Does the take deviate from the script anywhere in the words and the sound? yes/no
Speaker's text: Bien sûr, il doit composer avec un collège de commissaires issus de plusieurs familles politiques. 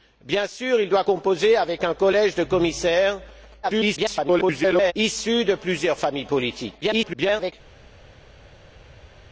yes